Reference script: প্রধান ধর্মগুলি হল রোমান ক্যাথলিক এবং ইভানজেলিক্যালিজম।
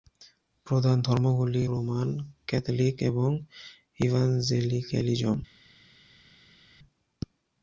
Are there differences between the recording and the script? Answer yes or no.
yes